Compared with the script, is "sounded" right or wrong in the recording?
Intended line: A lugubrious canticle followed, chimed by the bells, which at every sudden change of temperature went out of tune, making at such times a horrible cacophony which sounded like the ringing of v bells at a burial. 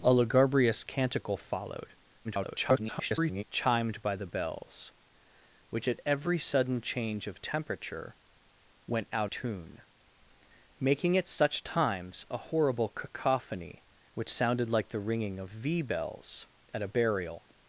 right